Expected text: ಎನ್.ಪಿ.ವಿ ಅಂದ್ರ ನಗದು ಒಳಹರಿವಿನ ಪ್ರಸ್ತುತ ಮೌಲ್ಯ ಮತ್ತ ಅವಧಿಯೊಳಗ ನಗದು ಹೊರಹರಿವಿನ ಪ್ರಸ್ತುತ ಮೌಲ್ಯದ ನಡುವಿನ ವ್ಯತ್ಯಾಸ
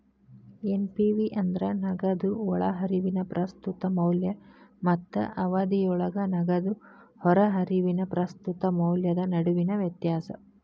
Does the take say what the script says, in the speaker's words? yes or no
yes